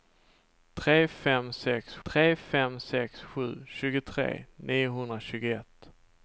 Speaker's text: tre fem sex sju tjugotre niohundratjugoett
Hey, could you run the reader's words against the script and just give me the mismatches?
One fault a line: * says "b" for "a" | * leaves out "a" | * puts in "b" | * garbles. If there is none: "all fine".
* puts in "tre fem sex"